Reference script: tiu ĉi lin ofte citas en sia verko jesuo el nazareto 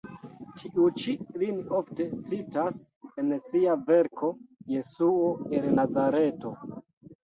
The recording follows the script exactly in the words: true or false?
true